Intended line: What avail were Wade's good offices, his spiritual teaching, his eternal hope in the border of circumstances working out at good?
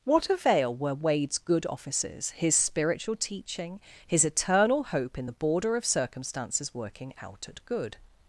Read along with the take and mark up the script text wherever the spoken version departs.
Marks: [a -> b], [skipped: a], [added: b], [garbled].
What avail were Wade's good offices, his spiritual teaching, his eternal hope in the border of circumstances working out at good?